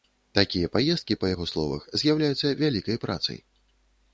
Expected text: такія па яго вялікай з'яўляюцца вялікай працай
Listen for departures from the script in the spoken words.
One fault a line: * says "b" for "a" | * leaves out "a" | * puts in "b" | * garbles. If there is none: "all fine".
* puts in "паездкі"
* says "словах" for "вялікай"